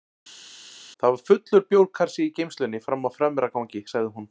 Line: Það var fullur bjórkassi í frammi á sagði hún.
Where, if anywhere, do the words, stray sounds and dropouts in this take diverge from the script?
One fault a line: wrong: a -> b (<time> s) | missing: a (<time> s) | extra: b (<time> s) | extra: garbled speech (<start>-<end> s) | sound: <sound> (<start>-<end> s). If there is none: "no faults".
extra: geymslunni (2.4 s)
extra: fremra gangi (3.2 s)